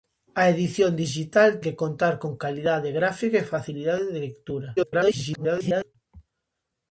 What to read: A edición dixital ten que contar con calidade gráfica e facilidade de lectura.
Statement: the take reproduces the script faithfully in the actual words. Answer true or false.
false